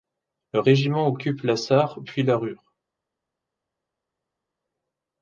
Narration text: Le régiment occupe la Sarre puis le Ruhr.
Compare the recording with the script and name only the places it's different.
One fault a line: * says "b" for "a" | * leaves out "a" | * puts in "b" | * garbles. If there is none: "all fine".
* says "la" for "le"